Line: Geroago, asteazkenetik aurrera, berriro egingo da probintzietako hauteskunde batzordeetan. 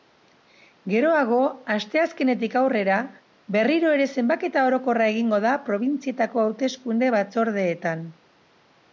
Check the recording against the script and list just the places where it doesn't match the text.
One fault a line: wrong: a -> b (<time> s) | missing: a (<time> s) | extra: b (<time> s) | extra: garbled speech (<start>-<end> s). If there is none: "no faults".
extra: ere zenbaketa orokorra (4.0 s)